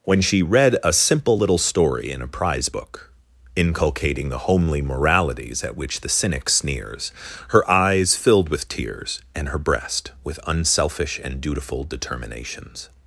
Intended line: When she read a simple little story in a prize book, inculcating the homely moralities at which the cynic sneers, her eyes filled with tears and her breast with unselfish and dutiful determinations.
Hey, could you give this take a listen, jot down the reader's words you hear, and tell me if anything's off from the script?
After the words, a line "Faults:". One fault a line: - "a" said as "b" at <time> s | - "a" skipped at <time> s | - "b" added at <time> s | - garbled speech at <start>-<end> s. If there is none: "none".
When she read a simple little story in a prize book, inculcating the homely moralities at which the cynic sneers, her eyes filled with tears and her breast with unselfish and dutiful determinations.
Faults:
none